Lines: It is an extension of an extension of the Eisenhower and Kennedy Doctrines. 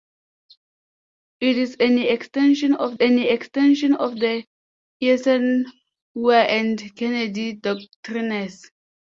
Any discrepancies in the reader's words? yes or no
no